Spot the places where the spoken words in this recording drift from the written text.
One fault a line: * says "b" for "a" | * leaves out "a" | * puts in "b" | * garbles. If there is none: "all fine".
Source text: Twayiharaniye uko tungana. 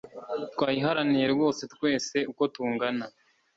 * puts in "rwose twese"